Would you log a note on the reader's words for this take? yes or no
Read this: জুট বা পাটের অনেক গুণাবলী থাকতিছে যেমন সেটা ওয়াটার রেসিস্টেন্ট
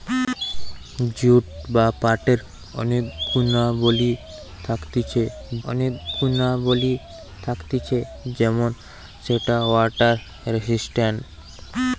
yes